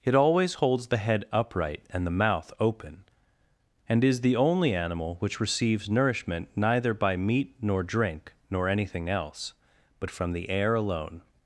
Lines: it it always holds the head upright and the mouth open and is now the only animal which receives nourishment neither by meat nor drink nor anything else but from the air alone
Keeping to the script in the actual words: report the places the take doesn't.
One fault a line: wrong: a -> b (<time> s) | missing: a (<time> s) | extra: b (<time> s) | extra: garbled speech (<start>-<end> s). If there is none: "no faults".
missing: it (0.1 s)
missing: now (4.2 s)